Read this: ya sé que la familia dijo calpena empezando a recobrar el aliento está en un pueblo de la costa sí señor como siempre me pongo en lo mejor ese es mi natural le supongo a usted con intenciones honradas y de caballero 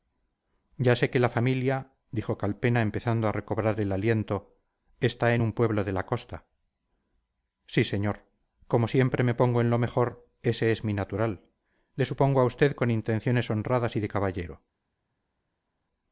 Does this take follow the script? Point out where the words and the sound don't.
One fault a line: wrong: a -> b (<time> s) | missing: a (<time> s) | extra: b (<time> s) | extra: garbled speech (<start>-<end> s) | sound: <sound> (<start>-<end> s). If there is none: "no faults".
no faults